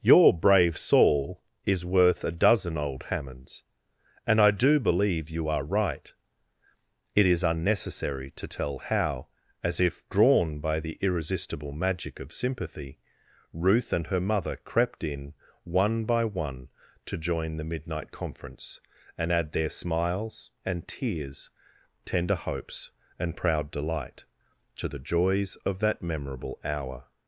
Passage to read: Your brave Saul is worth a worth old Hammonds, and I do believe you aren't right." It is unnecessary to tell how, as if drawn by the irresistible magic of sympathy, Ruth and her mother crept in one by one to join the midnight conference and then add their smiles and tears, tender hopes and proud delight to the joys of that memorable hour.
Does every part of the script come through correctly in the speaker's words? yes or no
no